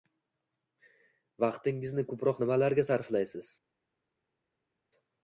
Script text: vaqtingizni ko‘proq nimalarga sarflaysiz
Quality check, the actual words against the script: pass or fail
pass